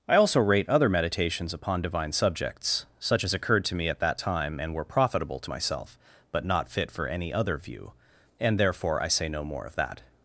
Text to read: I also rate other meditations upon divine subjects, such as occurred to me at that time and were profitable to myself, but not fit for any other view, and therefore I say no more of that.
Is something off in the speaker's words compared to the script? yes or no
no